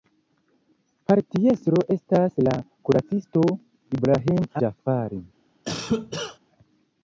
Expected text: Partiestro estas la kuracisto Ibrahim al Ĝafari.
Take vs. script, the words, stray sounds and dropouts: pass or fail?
fail